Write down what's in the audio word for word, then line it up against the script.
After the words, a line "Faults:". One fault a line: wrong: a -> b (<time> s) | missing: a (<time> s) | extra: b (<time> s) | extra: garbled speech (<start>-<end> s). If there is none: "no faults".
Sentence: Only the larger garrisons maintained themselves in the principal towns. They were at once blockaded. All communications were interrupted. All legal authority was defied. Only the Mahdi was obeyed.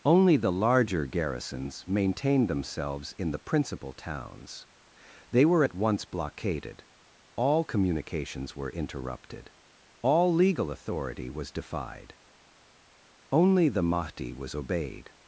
Only the larger garrisons maintained themselves in the principal towns. They were at once blockaded. All communications were interrupted. All legal authority was defied. Only the Mahdi was obeyed.
Faults:
no faults